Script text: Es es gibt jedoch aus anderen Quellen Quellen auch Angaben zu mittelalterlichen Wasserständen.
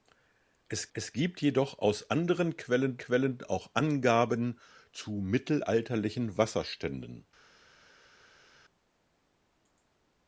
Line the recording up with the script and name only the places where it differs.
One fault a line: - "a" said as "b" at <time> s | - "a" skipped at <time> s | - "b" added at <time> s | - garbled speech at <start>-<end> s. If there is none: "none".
none